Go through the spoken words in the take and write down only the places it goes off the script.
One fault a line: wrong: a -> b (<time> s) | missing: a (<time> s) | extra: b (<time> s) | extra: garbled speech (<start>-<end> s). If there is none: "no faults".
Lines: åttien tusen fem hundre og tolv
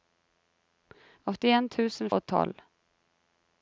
missing: fem hundre (2.1 s)